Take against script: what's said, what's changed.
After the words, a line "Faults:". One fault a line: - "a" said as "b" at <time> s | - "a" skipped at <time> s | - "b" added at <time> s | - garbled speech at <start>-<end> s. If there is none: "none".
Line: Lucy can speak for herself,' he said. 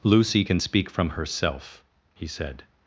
Lucy can speak from herself,' he said.
Faults:
- "for" said as "from" at 0.9 s